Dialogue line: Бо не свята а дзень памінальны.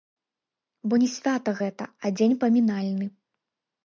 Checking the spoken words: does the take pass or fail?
fail